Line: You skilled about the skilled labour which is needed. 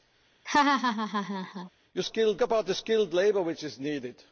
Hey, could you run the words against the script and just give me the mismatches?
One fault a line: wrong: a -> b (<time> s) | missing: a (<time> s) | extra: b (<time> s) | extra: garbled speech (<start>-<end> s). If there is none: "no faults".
no faults